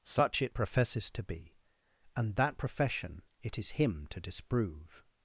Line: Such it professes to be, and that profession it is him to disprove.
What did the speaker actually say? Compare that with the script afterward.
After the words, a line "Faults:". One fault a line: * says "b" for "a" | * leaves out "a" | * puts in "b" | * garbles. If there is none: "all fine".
Such it professes to be, and that profession it is him to disprove.
Faults:
all fine